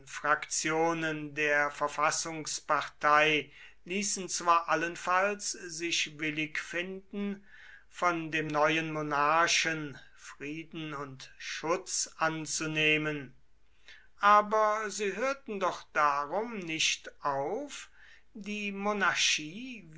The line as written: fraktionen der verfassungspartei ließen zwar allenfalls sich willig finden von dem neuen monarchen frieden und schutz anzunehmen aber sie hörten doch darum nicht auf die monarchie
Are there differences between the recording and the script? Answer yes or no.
no